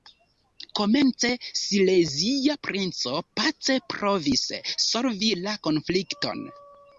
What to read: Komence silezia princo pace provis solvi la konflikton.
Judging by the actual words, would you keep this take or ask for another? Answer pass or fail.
pass